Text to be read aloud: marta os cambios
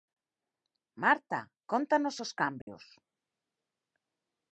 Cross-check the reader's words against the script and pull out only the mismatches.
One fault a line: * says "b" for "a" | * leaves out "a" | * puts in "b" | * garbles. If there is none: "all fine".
* puts in "cóntanos"